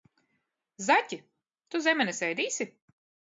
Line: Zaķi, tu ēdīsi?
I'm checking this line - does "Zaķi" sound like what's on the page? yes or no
yes